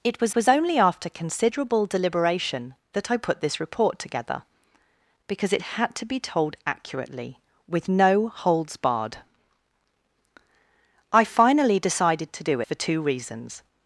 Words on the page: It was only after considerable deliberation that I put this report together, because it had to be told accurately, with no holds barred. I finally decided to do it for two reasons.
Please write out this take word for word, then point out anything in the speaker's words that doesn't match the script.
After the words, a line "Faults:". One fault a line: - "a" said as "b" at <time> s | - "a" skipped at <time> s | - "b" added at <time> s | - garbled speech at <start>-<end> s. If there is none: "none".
It was was only after considerable deliberation that I put this report together, because it had to be told accurately, with no holds barred. I finally decided to do for two reasons.
Faults:
- "was" added at 0.3 s
- "it" skipped at 12.6 s